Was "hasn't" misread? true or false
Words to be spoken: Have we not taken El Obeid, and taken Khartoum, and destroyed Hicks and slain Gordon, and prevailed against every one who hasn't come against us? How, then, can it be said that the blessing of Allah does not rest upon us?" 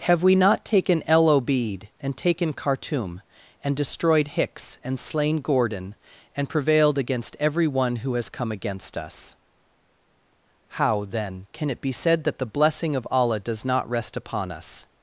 true